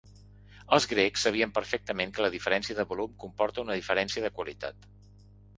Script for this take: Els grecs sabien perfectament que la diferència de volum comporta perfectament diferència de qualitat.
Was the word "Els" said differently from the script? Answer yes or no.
no